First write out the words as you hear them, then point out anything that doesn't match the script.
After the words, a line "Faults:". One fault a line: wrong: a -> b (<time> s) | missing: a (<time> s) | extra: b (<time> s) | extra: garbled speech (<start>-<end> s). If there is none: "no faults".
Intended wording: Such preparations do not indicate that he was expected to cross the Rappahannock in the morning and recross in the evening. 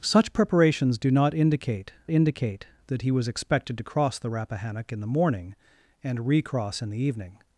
Such preparations do not indicate indicate that he was expected to cross the Rappahannock in the morning and recross in the evening.
Faults:
extra: indicate (2.1 s)